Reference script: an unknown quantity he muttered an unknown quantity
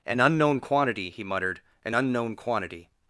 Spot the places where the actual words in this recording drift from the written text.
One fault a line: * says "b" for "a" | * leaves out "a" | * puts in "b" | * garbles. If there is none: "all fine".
all fine